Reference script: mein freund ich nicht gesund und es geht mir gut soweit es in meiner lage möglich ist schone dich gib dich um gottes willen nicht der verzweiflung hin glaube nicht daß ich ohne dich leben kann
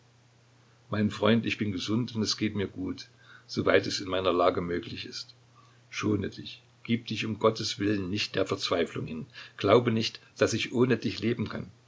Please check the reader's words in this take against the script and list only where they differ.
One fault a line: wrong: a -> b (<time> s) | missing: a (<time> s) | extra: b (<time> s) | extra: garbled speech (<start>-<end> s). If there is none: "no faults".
wrong: nicht -> bin (1.6 s)